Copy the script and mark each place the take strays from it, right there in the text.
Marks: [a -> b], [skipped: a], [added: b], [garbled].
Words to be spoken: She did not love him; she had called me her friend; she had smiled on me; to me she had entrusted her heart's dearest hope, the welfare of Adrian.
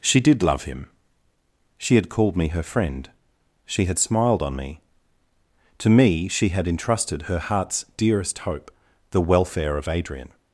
She did [skipped: not] love him; she had called me her friend; she had smiled on me; to me she had entrusted her heart's dearest hope, the welfare of Adrian.